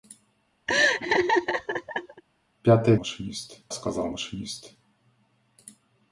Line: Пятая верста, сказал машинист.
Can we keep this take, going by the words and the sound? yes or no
no